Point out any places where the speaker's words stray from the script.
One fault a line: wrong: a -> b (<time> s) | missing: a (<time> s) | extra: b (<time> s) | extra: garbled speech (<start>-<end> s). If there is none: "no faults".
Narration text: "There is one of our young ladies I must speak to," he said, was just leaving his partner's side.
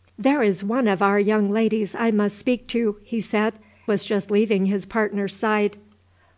no faults